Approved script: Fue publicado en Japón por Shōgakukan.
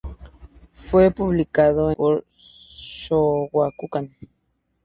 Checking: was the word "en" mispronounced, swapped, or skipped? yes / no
yes